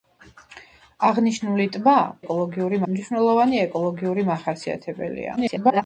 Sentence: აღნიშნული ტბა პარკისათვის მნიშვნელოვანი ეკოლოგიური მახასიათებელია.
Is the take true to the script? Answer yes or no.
no